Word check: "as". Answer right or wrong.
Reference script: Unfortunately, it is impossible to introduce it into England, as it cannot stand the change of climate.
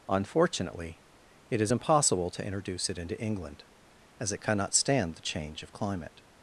right